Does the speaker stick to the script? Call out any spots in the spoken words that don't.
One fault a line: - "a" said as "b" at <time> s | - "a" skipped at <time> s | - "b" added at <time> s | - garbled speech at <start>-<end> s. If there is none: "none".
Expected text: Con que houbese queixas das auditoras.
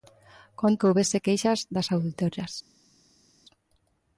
none